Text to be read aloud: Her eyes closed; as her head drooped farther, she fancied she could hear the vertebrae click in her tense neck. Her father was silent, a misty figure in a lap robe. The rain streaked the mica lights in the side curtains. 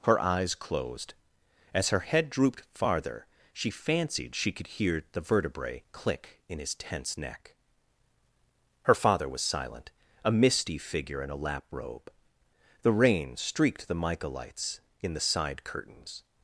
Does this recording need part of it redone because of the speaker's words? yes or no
yes